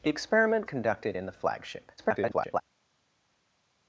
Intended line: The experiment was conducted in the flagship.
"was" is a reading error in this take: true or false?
true